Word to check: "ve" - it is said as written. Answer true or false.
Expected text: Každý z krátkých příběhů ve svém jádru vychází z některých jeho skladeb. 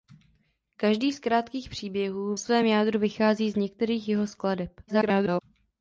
false